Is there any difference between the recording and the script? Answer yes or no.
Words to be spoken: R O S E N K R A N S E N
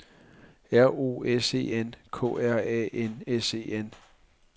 no